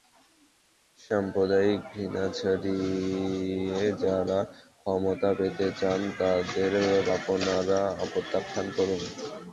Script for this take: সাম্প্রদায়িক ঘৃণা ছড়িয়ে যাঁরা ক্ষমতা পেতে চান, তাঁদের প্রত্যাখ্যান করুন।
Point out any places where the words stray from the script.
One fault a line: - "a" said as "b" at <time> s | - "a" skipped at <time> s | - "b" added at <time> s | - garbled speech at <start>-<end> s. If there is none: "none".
- "আপনারা" added at 7.1 s